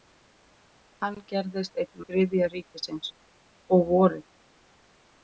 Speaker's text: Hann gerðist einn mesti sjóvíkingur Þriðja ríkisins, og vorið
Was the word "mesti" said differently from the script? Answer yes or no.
yes